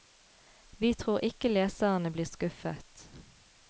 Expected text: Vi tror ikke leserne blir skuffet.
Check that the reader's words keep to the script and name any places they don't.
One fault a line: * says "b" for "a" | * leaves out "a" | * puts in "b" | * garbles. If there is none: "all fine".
all fine